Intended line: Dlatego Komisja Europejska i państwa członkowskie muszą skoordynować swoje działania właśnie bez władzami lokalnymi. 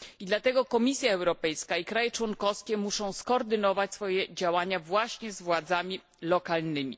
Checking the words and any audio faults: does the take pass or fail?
fail